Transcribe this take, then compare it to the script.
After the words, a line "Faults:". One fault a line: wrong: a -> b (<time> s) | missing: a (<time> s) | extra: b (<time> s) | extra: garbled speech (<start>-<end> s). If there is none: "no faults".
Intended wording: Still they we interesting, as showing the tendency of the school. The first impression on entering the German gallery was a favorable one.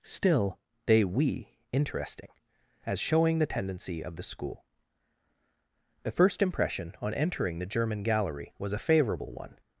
Still they we interesting, as showing the tendency of the school. The first impression on entering the German gallery was a favorable one.
Faults:
no faults